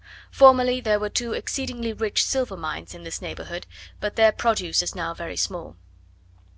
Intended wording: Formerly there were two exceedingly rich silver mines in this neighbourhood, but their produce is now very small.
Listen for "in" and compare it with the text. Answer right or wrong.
right